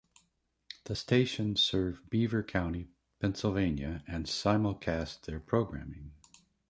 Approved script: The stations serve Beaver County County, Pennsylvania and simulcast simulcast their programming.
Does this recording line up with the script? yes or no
no